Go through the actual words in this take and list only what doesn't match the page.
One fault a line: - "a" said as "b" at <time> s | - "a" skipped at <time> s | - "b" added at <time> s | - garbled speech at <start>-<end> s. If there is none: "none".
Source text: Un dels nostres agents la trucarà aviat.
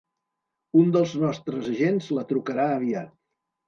none